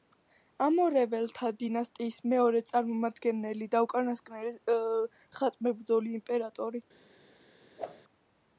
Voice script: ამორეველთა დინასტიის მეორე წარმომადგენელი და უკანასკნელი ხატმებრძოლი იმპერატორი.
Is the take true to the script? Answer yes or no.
yes